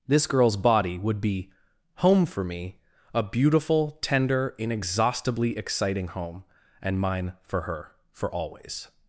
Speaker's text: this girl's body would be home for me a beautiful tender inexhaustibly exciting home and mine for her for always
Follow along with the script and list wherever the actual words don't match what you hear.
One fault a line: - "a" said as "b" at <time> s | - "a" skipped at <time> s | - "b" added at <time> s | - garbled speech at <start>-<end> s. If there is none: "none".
none